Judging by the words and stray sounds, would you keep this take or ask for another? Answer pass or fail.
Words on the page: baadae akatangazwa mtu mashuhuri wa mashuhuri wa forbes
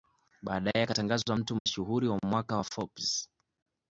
fail